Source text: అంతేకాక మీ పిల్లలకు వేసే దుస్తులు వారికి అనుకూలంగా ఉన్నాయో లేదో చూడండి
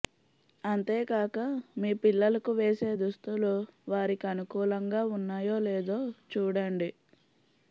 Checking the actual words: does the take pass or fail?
pass